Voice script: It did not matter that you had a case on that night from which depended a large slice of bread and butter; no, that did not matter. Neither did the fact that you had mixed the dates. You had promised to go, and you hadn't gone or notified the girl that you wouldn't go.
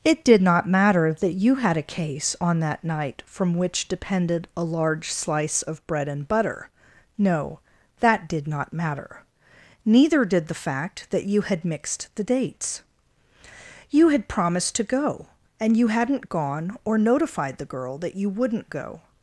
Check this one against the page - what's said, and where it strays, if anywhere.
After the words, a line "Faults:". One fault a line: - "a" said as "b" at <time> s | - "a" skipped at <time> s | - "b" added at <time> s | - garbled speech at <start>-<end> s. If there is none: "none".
It did not matter that you had a case on that night from which depended a large slice of bread and butter; no, that did not matter. Neither did the fact that you had mixed the dates. You had promised to go, and you hadn't gone or notified the girl that you wouldn't go.
Faults:
none